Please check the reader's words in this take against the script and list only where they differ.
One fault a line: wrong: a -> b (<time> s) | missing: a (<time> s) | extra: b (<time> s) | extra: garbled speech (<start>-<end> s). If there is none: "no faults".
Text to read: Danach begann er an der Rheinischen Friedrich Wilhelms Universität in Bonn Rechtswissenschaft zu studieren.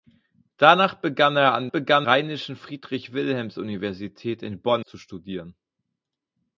wrong: der -> begann (1.7 s)
missing: Rechtswissenschaft (4.9 s)